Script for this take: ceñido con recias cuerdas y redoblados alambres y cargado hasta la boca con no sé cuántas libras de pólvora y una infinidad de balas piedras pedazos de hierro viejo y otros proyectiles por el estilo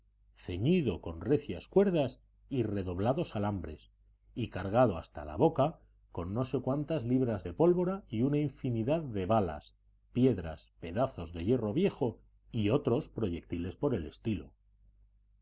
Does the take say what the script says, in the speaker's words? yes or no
yes